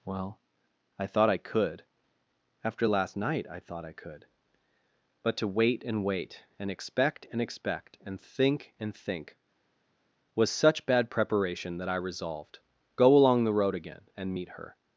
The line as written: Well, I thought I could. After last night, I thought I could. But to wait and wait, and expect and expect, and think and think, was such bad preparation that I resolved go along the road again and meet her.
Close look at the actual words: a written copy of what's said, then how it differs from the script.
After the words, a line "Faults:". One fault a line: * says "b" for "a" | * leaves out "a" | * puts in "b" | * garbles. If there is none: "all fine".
Well, I thought I could. After last night, I thought I could. But to wait and wait, and expect and expect, and think and think, was such bad preparation that I resolved go along the road again and meet her.
Faults:
all fine